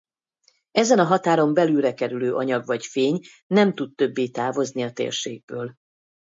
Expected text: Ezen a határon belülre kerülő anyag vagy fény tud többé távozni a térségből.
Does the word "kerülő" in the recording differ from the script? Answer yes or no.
no